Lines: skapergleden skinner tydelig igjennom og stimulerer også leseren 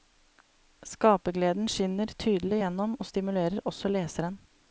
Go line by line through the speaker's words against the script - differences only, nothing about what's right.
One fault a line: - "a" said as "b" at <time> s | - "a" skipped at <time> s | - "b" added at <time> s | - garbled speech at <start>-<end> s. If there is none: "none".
none